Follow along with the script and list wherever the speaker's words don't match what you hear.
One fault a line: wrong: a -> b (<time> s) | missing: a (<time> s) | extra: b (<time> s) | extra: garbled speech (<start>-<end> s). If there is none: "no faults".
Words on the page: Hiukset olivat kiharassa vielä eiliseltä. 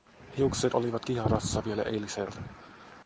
no faults